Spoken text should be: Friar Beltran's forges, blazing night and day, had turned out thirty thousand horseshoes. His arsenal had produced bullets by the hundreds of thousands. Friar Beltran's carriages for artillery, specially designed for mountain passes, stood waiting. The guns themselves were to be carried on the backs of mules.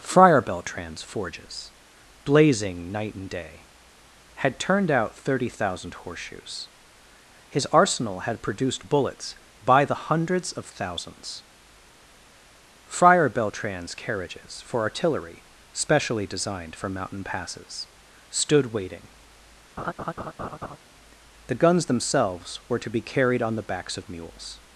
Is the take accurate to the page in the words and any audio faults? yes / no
no